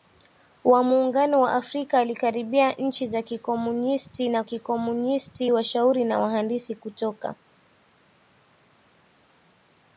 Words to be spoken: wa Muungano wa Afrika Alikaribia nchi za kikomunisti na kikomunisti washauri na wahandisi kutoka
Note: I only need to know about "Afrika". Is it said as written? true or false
true